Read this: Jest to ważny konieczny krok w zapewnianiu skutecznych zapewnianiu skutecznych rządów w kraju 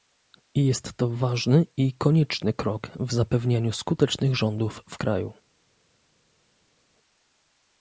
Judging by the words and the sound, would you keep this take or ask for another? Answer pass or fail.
fail